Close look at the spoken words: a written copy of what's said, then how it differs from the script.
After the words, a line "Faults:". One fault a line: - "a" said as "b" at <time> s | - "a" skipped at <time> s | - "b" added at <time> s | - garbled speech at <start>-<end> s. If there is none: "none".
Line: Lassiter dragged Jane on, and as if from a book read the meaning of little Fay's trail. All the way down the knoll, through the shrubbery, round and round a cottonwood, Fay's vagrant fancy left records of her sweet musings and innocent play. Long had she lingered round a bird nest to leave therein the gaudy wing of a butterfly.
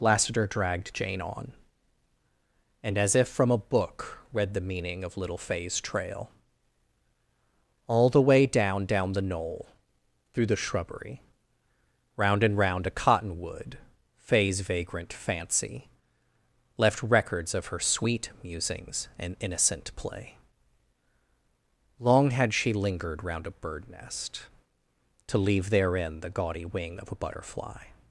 Lassiter dragged Jane on, and as if from a book read the meaning of little Fay's trail. All the way down down the knoll, through the shrubbery, round and round a cottonwood, Fay's vagrant fancy left records of her sweet musings and innocent play. Long had she lingered round a bird nest to leave therein the gaudy wing of a butterfly.
Faults:
- "down" added at 8.9 s